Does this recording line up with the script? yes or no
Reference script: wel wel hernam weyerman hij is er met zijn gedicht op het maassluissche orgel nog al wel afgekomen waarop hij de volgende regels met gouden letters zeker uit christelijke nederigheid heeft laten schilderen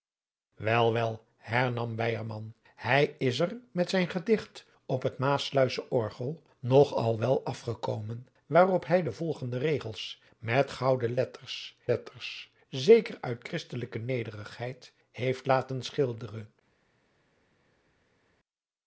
no